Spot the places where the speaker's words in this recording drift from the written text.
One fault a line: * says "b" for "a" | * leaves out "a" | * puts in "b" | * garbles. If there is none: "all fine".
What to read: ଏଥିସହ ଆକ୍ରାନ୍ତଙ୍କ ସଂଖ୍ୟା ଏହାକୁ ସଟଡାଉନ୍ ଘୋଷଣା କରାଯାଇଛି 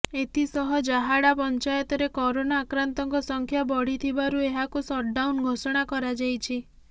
* puts in "ଜାହାଡ଼ା ପଞ୍ଚାୟତରେ କରୋନା"
* puts in "ବଢ଼ିଥିବାରୁ"